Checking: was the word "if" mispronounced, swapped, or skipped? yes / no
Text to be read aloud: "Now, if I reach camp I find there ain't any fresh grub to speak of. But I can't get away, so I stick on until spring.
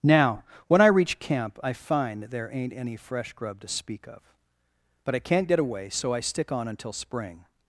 yes